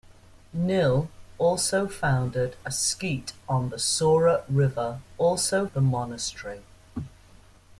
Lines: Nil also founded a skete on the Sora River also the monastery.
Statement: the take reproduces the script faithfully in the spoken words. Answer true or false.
true